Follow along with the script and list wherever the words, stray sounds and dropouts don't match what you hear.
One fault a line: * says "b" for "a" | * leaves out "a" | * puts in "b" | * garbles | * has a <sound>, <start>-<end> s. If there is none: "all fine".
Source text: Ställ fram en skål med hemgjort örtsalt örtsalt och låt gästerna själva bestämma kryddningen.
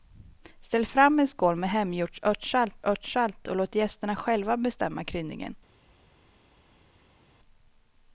all fine